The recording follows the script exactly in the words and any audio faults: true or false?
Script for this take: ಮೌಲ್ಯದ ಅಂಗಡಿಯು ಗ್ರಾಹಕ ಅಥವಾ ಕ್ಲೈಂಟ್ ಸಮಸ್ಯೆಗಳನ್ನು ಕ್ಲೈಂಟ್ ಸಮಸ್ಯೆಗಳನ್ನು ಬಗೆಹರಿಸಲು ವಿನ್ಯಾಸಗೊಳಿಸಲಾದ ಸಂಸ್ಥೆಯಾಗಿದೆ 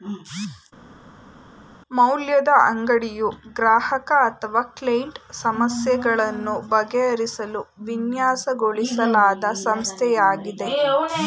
false